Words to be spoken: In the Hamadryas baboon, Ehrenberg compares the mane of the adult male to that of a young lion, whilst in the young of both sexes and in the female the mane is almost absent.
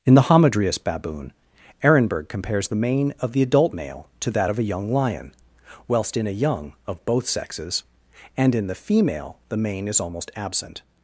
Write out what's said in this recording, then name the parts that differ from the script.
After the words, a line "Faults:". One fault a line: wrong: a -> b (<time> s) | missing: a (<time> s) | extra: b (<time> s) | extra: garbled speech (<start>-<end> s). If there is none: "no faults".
In the Hamadryas baboon, Ehrenberg compares the mane of the adult male to that of a young lion, whilst in a young of both sexes and in the female the mane is almost absent.
Faults:
wrong: the -> a (6.3 s)